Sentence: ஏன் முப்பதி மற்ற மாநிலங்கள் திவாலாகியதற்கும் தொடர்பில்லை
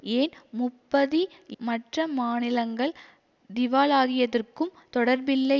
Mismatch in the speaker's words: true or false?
false